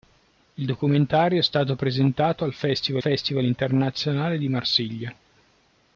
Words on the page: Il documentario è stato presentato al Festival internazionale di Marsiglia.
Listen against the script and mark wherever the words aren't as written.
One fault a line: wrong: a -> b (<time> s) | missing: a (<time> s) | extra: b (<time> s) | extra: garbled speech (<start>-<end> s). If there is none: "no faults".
extra: Festival (3.0 s)